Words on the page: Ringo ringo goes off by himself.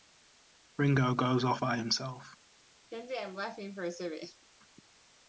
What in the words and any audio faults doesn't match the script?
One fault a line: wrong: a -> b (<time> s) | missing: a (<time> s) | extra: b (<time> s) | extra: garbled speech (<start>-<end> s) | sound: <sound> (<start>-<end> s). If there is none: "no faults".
missing: ringo (1.1 s)
sound: laugh (2.9-4.5 s)